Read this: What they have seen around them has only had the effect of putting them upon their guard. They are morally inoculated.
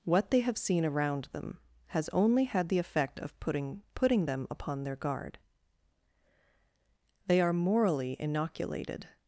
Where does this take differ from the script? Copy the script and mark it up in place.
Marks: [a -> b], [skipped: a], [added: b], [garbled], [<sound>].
What they have seen around them has only had the effect of putting [added: putting] them upon their guard. They are morally inoculated.